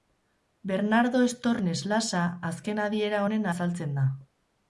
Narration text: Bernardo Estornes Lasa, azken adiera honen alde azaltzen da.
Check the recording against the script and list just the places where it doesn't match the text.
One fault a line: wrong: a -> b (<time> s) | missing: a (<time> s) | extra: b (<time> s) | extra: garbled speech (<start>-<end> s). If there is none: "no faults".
missing: alde (3.5 s)